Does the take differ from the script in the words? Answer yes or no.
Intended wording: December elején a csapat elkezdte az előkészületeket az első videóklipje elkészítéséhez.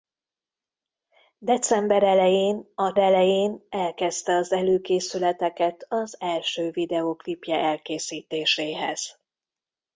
yes